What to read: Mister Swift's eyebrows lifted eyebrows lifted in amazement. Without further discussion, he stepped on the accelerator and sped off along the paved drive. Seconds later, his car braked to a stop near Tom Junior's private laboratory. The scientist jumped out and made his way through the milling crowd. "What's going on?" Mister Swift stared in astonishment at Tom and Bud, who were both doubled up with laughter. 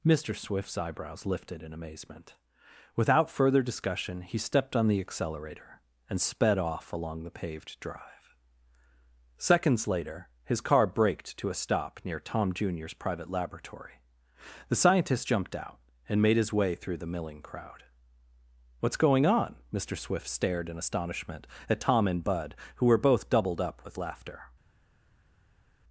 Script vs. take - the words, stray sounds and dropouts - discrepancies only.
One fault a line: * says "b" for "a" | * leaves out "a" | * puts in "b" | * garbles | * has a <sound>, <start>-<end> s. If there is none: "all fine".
* leaves out "eyebrows lifted"